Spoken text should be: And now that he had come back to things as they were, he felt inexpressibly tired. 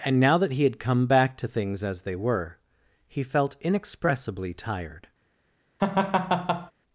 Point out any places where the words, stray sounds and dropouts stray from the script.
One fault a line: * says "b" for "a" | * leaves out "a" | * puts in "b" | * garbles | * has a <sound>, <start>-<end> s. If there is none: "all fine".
* has a laugh, 5.8-6.7 s